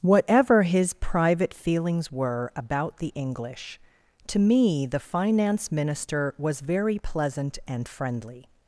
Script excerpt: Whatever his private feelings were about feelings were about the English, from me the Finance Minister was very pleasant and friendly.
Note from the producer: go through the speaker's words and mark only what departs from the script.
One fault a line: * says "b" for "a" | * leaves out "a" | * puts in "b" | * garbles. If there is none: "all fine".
* leaves out "feelings were about"
* says "to" for "from"